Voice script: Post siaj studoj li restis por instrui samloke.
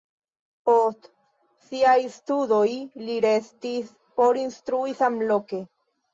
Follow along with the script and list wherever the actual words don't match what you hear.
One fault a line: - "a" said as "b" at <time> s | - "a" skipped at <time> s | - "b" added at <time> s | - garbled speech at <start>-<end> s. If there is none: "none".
none